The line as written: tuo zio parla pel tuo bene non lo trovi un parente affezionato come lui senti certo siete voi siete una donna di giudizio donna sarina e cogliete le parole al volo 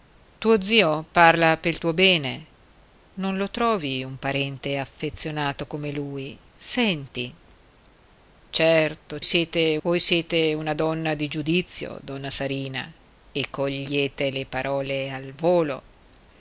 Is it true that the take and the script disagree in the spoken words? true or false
false